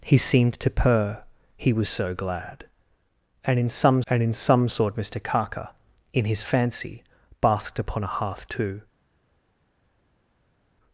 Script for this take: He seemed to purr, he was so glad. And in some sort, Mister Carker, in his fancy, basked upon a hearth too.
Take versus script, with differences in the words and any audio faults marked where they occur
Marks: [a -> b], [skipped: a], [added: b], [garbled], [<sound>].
He seemed to purr, he was so glad. And in some [added: and in some] sort, Mister Carker, in his fancy, basked upon a hearth too.